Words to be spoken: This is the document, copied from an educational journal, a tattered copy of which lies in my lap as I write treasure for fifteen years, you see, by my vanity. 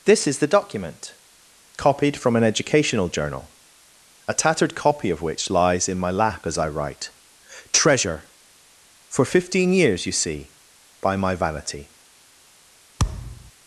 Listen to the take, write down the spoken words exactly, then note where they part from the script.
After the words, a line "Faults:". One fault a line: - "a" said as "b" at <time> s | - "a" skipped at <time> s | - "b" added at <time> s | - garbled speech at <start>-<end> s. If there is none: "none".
This is the document, copied from an educational journal, a tattered copy of which lies in my lap as I write treasure for fifteen years, you see, by my vanity.
Faults:
none